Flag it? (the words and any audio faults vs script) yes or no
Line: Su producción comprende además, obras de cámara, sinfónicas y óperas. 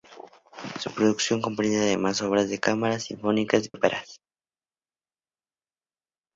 yes